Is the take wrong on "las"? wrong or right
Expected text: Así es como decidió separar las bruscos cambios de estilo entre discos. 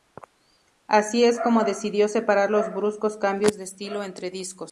wrong